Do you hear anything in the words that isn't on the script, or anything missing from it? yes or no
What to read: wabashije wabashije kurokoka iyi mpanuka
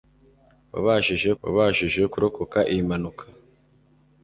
no